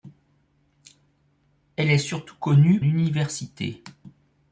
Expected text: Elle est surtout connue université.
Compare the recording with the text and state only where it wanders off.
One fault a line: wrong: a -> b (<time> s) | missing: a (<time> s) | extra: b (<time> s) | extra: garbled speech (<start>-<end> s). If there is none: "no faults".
no faults